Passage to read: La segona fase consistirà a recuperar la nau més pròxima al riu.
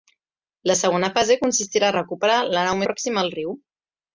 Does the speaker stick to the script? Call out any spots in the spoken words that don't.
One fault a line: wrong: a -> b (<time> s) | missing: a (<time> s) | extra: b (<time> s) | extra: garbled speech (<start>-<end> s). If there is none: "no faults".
missing: més (2.8 s)